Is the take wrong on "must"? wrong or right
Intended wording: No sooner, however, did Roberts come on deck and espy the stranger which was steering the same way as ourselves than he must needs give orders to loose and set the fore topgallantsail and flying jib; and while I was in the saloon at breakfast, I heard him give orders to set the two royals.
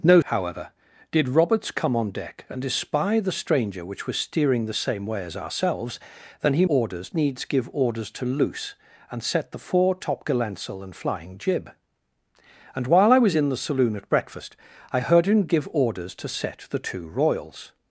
wrong